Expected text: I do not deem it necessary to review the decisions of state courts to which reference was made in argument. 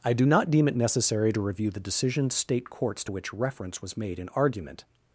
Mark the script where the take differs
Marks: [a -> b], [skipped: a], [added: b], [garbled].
I do not deem it necessary to review the decisions [skipped: of] state courts to which reference was made in argument.